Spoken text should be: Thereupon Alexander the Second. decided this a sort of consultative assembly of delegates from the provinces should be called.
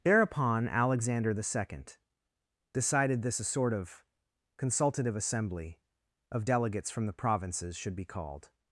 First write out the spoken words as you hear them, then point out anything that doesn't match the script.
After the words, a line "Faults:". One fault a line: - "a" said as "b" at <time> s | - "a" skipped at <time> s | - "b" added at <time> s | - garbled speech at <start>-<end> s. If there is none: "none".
Thereupon Alexander the Second. decided this a sort of consultative assembly of delegates from the provinces should be called.
Faults:
none